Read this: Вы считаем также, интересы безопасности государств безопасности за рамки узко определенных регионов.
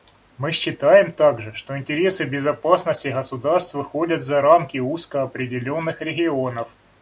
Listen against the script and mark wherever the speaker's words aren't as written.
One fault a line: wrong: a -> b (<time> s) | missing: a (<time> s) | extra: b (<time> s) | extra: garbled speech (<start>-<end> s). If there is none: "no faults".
wrong: Вы -> Мы (0.3 s)
extra: что (1.5 s)
wrong: безопасности -> выходят (3.8 s)